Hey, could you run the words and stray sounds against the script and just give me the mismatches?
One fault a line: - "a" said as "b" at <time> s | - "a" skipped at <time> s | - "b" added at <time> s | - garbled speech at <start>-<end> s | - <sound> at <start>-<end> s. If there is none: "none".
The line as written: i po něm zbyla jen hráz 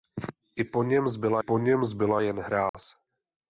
- "po něm zbyla" added at 1.4 s
- dropout at 2.7-2.7 s